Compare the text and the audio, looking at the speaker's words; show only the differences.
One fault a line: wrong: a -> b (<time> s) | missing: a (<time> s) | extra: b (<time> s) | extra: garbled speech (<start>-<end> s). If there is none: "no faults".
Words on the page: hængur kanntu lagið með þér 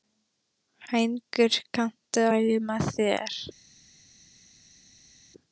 no faults